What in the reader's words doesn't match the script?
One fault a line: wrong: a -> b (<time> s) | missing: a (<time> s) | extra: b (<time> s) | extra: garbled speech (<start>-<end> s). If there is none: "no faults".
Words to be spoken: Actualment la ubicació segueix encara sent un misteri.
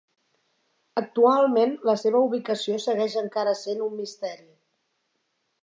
extra: seva (2.0 s)